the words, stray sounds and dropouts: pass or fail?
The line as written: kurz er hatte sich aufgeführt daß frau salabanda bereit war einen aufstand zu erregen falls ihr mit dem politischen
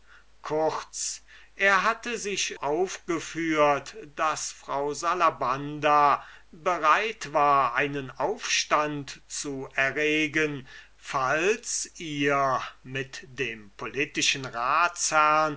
pass